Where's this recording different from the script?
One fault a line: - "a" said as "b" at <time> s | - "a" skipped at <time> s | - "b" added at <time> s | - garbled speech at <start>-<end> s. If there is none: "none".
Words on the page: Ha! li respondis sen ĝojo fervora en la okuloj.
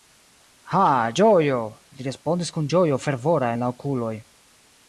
- "ĝojo" added at 1.2 s
- "sen" said as "kun" at 2.6 s